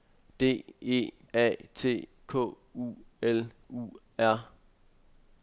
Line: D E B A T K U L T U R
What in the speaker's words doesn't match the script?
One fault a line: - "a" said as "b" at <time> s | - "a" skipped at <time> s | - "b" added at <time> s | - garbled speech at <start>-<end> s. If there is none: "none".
- "B" skipped at 1.1 s
- "T" skipped at 3.5 s